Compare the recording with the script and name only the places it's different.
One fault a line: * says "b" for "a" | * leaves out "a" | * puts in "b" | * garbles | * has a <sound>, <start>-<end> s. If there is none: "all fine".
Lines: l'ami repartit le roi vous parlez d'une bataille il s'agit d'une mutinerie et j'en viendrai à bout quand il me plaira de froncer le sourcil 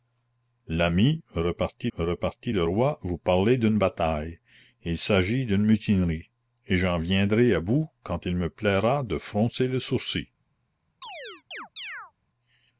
* puts in "repartit"
* has a chirp, 11.0-12.1 s